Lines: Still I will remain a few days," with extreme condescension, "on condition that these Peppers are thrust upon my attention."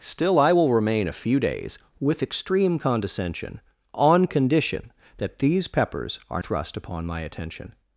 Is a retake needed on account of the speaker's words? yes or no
no